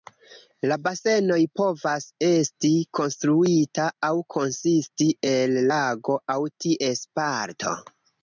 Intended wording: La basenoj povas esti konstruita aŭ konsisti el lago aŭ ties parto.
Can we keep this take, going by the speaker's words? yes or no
yes